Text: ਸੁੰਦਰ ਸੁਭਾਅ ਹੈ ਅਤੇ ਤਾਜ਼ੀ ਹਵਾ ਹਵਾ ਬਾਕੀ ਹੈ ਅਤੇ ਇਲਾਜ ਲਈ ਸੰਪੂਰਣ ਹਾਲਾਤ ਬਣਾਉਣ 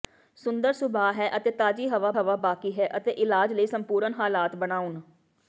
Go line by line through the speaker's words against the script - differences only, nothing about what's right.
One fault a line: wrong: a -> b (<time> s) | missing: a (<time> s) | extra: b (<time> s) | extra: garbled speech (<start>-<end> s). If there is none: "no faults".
no faults